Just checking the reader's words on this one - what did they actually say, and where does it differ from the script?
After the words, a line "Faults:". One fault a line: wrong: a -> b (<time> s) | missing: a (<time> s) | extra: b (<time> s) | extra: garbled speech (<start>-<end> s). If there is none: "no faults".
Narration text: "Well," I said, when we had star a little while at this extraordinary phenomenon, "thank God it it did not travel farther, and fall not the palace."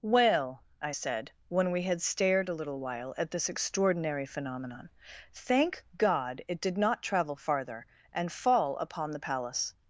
"Well," I said, when we had stared a little while at this extraordinary phenomenon, "thank God it did not travel farther, and fall upon the palace."
Faults:
wrong: star -> stared (2.0 s)
missing: it (6.6 s)
wrong: not -> upon (8.8 s)